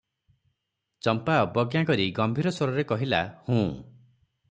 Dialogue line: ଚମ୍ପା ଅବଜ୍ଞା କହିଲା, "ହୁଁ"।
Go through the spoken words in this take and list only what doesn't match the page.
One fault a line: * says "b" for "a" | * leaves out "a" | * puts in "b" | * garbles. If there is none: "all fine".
* puts in "କରି ଗମ୍ଭୀର ସ୍ୱରରେ"